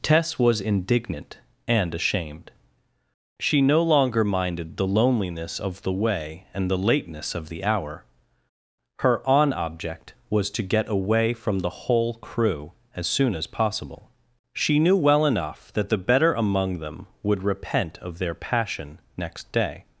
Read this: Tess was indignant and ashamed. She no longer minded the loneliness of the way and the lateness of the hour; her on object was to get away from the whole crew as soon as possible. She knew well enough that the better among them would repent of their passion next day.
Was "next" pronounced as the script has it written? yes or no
yes